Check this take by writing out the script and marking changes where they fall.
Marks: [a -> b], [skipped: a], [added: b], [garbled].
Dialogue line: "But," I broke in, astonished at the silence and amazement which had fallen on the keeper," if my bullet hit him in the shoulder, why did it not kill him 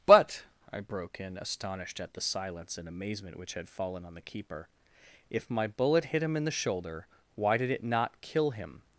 "But," I broke in, astonished at the silence and amazement which had fallen on the keeper," if my bullet hit him in the shoulder, why did it not kill him